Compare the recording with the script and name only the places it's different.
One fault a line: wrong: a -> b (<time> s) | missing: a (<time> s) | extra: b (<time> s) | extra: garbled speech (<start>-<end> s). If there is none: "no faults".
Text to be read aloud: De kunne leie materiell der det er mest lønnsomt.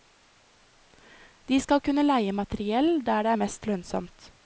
extra: skal (1.6 s)